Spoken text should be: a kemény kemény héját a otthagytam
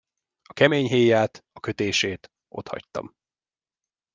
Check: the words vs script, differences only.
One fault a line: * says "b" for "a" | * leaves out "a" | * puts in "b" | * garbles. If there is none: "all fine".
* leaves out "kemény"
* puts in "kötését"